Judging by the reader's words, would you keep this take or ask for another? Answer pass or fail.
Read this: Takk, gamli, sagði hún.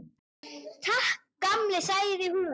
pass